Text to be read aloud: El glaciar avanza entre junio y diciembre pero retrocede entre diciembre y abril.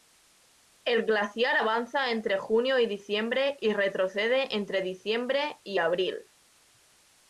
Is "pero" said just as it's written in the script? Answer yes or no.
no